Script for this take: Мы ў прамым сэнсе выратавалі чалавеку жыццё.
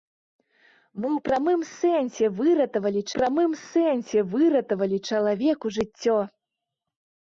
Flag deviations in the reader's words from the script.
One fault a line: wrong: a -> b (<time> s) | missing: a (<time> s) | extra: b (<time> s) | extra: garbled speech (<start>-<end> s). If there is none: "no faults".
extra: прамым сэнсе выратавалі (3.2 s)